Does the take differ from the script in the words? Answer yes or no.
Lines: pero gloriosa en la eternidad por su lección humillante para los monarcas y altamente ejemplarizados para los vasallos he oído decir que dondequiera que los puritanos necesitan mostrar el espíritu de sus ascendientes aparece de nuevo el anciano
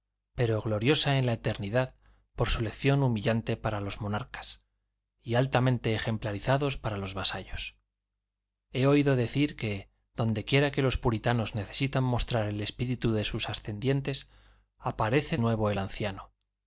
yes